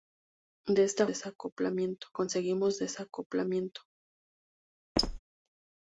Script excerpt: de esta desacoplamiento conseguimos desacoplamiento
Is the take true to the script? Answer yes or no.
yes